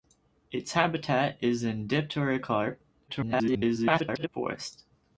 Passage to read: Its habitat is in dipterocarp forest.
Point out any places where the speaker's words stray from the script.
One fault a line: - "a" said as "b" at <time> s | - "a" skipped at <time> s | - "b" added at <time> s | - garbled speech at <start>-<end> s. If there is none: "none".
- garbled speech at 3.1-4.3 s